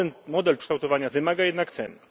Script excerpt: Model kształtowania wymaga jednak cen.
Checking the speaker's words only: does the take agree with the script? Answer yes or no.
yes